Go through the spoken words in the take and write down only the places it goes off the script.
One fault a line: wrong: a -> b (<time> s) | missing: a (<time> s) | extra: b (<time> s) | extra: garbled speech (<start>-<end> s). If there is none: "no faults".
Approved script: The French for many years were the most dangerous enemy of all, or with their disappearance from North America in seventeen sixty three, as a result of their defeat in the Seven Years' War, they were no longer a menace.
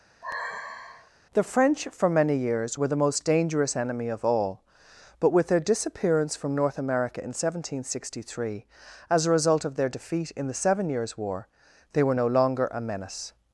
wrong: or -> but (5.2 s)